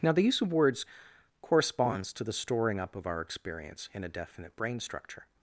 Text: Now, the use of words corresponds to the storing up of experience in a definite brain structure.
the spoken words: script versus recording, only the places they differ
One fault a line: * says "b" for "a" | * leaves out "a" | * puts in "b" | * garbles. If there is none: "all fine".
* puts in "our"